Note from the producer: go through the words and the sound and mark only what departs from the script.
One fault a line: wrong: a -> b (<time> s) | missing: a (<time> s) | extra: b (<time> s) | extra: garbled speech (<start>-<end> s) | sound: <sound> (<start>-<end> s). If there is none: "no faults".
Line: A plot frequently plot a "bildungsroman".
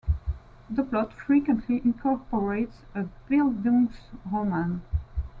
wrong: A -> The (0.7 s)
wrong: plot -> incorporates (1.8 s)